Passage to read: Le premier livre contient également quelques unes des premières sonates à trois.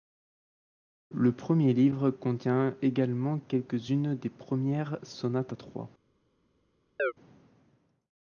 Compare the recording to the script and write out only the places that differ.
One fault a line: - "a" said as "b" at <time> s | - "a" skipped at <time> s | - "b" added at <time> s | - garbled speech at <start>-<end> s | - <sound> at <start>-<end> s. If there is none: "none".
- chirp at 7.0-7.1 s